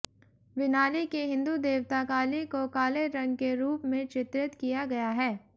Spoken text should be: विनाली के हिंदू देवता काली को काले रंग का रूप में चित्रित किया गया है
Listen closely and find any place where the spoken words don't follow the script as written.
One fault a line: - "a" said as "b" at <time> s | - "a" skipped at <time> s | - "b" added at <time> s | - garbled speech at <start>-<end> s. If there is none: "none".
- "का" said as "के" at 3.4 s